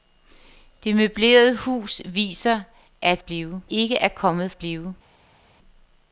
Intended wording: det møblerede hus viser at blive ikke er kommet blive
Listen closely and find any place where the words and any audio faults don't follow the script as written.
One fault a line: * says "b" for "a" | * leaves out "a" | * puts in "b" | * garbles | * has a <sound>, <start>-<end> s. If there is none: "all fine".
all fine